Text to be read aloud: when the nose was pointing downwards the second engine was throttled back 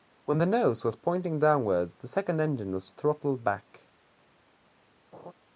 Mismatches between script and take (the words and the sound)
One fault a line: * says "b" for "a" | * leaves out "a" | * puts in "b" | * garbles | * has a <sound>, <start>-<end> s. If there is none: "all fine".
* has a laugh, 5.1-5.3 s